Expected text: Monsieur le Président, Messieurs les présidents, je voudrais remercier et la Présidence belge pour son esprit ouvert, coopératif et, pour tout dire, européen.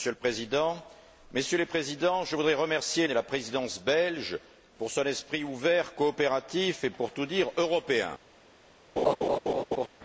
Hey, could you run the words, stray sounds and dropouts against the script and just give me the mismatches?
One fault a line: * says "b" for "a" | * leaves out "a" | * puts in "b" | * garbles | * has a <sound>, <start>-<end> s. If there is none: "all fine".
* has a laugh, 9.0-9.9 s